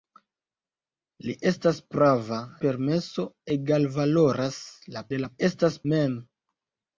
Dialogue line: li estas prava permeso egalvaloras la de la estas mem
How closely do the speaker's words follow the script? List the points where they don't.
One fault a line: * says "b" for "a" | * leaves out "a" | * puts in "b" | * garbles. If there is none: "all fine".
all fine